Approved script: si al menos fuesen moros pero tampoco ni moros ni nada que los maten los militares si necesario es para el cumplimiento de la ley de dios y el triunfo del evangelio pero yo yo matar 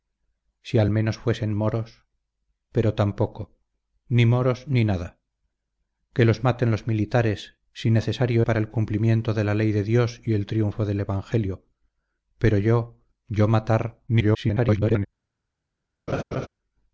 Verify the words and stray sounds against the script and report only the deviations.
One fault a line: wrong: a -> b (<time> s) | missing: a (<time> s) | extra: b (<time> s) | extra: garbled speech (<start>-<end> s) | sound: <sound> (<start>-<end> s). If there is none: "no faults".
missing: es (8.5 s)
extra: garbled speech (14.1-15.1 s)
sound: laugh (16.1-16.5 s)